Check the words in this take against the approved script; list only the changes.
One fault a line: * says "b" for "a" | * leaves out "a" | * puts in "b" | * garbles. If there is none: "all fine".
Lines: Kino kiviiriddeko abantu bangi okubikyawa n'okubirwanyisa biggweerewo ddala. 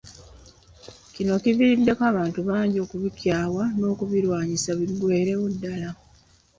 all fine